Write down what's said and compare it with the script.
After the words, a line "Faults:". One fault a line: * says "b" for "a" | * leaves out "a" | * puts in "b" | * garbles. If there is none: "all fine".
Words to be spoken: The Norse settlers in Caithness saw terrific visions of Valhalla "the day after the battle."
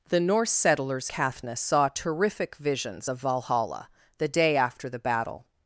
The Norse settlers Caithness saw terrific visions of Valhalla "the day after the battle."
Faults:
* leaves out "in"